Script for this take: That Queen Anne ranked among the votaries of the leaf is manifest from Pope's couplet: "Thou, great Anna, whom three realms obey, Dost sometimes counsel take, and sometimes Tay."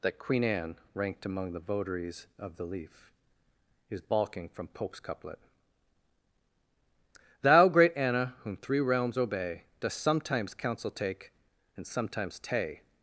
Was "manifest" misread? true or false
true